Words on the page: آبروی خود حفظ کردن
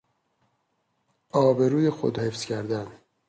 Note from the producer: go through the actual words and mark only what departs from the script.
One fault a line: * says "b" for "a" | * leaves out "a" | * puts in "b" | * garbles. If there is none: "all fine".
all fine